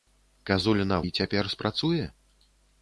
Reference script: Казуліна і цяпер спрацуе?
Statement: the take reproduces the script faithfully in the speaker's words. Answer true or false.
true